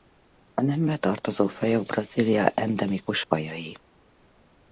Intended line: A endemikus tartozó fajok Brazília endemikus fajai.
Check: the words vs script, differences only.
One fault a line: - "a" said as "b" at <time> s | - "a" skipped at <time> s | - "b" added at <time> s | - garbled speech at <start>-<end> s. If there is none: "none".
- "endemikus" said as "nembe" at 0.6 s